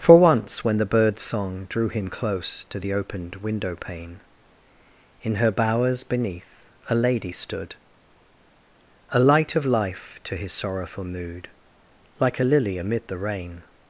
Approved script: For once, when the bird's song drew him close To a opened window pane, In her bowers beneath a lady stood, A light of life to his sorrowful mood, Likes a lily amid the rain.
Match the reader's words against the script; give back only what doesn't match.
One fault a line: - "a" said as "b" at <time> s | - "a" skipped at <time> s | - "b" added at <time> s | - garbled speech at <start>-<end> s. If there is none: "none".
- "a" said as "the" at 2.8 s
- "Likes" said as "Like" at 12.2 s